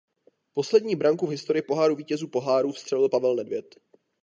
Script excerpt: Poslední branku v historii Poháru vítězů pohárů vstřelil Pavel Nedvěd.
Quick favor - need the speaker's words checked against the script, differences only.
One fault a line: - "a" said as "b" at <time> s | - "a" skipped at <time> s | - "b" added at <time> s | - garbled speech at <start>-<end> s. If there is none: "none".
none